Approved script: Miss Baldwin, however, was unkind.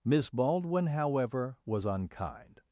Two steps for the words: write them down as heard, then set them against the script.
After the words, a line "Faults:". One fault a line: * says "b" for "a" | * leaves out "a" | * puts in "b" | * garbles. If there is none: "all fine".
Miss Baldwin, however, was unkind.
Faults:
all fine